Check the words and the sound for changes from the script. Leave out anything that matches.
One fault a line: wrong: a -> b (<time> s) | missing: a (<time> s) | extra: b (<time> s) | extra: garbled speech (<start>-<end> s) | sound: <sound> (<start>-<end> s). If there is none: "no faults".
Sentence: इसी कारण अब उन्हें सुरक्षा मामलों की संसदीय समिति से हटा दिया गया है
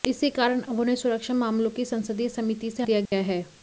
missing: हटा (2.8 s)
sound: dropout (3.1-3.1 s)